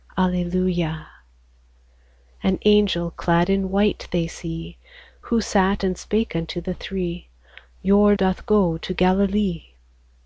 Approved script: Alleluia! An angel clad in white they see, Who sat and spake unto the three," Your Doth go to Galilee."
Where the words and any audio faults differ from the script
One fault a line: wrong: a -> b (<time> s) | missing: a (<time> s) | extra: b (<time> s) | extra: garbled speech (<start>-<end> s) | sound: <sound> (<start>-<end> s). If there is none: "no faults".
no faults